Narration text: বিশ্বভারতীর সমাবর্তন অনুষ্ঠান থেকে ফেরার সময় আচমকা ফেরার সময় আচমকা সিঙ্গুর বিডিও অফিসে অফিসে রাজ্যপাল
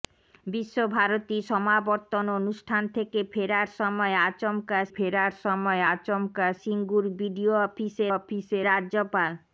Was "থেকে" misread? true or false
false